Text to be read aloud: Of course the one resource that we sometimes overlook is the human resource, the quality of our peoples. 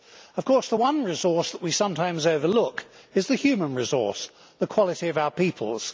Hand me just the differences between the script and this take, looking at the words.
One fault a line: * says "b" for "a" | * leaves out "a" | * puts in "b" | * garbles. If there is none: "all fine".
all fine